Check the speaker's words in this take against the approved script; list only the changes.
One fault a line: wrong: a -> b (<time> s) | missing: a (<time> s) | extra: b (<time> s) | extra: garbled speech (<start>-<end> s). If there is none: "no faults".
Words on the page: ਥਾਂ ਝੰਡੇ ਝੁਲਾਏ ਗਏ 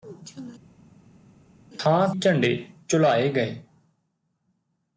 no faults